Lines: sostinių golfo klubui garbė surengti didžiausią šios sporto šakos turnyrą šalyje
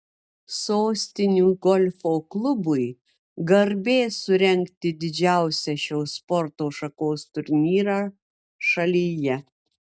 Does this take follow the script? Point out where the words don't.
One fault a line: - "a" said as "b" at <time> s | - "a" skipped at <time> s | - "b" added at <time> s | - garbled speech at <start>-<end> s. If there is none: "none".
none